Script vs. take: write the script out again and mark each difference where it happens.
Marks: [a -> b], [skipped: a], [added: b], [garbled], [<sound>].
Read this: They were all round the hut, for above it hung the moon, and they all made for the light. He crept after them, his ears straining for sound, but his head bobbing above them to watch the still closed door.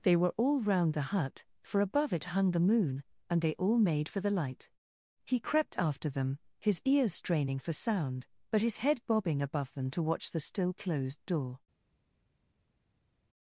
They were all round the hut, for above it hung the moon, and they all made for the light. He crept after them, his ears straining for sound, but his head bobbing above them to watch the still closed door.